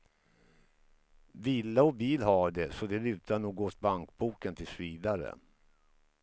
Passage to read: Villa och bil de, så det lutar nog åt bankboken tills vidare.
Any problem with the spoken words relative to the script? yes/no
yes